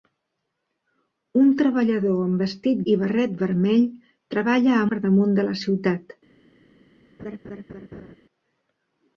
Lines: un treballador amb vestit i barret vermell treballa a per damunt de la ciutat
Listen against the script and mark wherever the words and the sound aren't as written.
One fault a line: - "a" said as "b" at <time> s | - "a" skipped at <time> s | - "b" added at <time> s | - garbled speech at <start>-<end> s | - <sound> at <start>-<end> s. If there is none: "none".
- laugh at 7.2-8.2 s